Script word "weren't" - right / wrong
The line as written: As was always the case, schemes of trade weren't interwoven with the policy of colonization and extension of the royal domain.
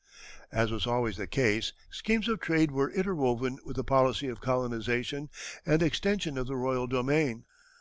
wrong